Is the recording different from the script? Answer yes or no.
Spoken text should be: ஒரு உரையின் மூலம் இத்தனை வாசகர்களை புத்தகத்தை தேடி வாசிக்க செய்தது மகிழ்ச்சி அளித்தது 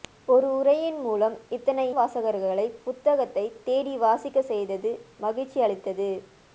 no